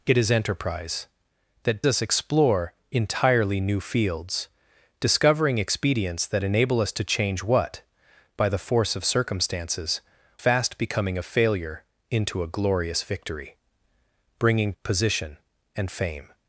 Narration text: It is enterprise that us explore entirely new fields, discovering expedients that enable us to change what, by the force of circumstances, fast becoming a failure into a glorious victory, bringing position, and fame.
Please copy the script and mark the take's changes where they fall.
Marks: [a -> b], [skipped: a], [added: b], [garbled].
It is enterprise that us explore entirely new fields, discovering expedients that enable us to change what, by the force of circumstances, fast becoming a failure into a glorious victory, bringing position, and fame.